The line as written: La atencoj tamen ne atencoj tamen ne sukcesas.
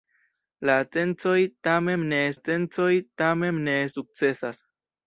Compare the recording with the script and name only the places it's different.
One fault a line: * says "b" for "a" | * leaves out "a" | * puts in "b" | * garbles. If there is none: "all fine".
all fine